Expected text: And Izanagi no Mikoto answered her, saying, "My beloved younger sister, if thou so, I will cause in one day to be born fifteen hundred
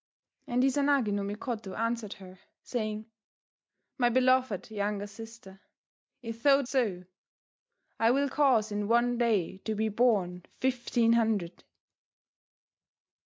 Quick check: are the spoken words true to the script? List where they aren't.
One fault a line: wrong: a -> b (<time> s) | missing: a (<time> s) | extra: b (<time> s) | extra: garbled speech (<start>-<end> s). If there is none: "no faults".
no faults